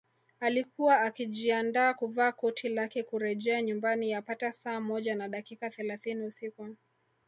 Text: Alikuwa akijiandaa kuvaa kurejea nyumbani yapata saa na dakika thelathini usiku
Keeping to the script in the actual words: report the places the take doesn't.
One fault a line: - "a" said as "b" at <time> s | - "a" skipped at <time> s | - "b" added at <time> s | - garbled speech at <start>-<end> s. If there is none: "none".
- "koti lake" added at 2.3 s
- "moja" added at 4.8 s